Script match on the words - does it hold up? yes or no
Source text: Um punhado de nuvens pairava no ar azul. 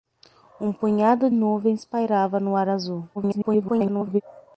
no